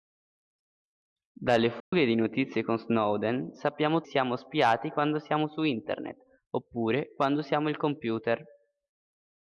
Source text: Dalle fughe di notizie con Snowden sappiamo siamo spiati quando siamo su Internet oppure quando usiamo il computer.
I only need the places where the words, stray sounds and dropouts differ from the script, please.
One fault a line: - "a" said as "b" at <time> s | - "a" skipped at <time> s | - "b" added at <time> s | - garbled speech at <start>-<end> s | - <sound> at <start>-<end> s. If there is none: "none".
- dropout at 1.8-1.9 s